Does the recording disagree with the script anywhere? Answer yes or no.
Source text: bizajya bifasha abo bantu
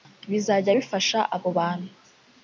no